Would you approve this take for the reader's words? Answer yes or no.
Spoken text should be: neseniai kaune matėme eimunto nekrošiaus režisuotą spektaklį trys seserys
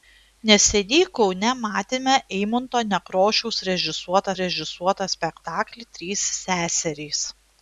no